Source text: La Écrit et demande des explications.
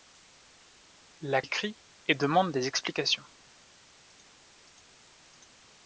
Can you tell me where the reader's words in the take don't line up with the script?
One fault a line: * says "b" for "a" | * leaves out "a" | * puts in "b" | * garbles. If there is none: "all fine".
all fine